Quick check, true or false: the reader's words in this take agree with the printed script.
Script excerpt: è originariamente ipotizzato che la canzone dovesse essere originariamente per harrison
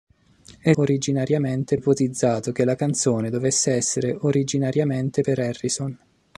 true